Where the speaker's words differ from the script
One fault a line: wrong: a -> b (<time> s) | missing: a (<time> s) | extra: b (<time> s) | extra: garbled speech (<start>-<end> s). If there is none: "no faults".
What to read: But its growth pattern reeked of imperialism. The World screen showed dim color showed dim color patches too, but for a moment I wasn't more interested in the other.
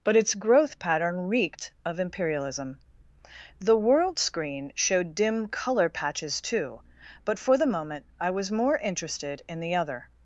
missing: showed dim color (5.9 s)
wrong: a -> the (7.5 s)
wrong: wasn't -> was (8.3 s)